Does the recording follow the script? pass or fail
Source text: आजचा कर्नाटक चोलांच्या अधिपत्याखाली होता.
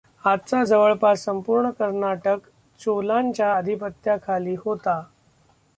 fail